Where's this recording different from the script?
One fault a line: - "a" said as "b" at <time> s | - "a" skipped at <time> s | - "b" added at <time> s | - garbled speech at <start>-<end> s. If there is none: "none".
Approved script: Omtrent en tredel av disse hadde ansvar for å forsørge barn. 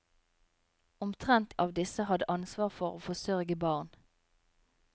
- "en tredel" skipped at 1.5 s